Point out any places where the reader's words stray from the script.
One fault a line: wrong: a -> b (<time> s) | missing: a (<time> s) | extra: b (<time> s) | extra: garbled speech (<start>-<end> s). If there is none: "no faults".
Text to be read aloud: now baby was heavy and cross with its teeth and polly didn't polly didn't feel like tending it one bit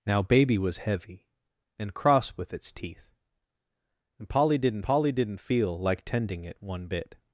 no faults